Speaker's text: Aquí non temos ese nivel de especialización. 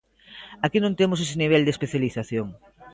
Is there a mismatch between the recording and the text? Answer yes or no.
no